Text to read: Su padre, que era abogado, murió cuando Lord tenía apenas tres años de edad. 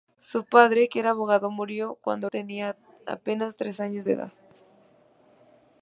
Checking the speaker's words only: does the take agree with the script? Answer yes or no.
no